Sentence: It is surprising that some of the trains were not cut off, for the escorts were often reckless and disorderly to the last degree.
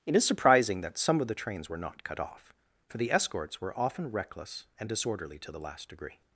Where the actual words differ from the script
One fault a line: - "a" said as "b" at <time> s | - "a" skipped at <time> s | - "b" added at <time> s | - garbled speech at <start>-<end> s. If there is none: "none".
none